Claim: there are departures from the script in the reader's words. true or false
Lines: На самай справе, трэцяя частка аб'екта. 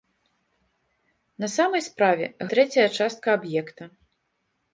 false